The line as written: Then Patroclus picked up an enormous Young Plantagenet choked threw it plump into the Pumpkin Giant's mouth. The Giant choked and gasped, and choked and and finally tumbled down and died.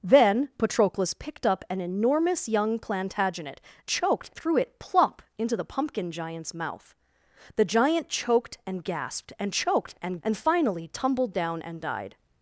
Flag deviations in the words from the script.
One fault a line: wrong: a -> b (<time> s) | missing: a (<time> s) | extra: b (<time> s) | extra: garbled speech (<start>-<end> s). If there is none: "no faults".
no faults